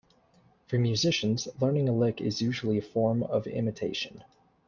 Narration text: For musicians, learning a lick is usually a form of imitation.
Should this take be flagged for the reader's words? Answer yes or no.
no